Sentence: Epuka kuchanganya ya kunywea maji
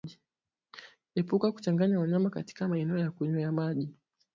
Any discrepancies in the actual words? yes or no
yes